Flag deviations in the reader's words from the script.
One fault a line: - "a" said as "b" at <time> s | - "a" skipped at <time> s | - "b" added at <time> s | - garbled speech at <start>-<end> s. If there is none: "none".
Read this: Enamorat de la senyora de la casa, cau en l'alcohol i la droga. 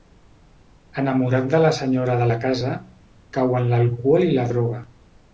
none